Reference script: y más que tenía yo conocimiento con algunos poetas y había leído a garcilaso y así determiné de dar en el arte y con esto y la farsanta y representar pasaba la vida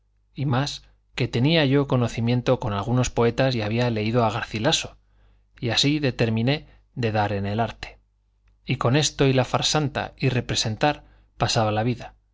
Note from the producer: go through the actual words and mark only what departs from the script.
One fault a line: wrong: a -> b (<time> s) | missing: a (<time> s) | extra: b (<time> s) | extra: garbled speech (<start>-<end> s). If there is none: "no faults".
no faults